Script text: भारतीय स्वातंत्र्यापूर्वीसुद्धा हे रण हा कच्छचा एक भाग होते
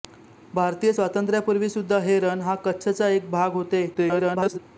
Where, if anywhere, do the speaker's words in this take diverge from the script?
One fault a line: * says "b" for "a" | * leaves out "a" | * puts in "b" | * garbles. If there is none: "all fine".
* garbles